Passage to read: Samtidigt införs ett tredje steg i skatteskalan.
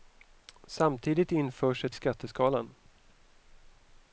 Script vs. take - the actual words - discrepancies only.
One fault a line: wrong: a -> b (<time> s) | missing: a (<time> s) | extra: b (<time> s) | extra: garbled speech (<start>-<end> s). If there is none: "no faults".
missing: tredje steg i (1.9 s)